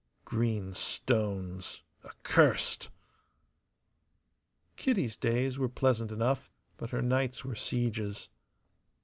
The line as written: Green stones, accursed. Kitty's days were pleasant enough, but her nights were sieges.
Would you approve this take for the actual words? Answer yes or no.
yes